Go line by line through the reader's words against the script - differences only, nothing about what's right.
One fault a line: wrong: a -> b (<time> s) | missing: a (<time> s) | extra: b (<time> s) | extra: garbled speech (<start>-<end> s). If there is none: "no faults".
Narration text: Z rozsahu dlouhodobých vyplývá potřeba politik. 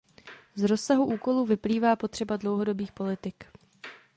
wrong: dlouhodobých -> úkolů (1.1 s)
extra: dlouhodobých (2.4 s)